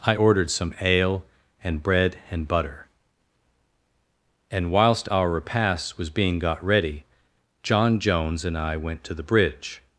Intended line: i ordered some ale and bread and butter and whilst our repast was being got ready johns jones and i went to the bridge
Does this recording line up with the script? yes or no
no